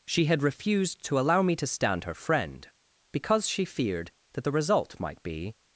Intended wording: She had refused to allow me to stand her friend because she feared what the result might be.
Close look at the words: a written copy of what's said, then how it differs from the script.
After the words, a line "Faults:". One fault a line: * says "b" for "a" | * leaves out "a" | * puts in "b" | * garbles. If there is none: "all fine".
She had refused to allow me to stand her friend because she feared that the result might be.
Faults:
* says "that" for "what"